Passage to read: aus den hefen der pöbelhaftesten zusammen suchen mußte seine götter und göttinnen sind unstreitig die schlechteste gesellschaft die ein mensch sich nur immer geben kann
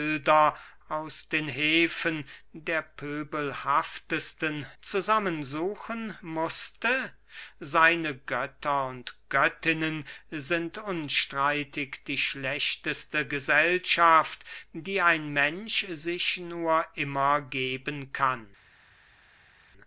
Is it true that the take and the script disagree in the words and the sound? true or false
false